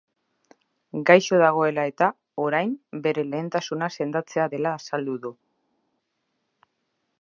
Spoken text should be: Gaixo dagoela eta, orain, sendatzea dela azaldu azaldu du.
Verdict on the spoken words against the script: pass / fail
fail